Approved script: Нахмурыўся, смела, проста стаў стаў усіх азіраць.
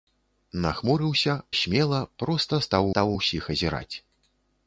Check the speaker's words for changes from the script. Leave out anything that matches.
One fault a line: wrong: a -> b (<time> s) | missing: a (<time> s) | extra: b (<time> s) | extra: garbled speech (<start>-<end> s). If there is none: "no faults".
no faults